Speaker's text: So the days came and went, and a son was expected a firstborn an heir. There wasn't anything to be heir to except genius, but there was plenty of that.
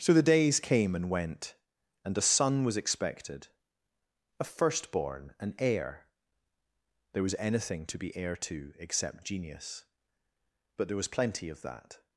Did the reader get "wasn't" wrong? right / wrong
wrong